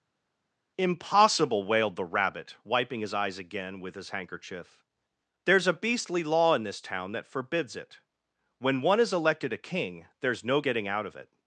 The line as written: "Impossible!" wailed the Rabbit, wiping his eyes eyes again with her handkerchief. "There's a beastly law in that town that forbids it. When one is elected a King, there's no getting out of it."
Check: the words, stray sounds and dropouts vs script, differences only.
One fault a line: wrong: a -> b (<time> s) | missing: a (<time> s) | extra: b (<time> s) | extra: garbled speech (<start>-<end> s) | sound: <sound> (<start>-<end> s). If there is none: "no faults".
missing: eyes (3.4 s)
wrong: her -> his (3.9 s)
wrong: that -> this (6.6 s)